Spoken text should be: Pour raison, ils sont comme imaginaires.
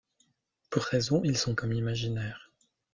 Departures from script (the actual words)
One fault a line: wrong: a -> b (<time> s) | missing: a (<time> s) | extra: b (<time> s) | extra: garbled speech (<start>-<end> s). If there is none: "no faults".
no faults